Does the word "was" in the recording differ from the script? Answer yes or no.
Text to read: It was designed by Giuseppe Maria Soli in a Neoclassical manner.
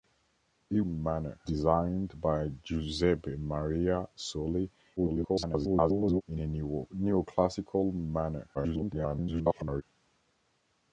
yes